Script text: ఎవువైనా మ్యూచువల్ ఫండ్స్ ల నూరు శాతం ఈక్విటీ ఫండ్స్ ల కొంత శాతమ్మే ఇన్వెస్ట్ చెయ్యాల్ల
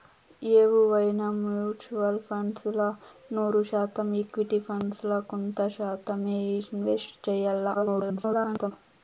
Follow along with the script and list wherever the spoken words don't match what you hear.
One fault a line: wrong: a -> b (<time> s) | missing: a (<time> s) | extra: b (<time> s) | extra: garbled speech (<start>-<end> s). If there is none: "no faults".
extra: garbled speech (7.7-8.7 s)